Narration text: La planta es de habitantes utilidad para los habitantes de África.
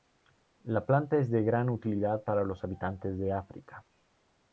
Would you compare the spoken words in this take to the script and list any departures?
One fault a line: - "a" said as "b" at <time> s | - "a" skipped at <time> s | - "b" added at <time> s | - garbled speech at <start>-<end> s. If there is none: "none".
- "habitantes" said as "gran" at 1.4 s